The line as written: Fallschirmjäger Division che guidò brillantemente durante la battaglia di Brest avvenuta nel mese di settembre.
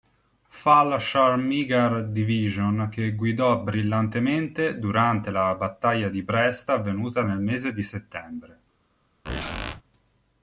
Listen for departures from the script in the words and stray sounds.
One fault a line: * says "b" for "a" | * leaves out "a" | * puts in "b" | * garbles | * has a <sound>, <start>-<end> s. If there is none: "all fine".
* has a squeak, 9.2-9.8 s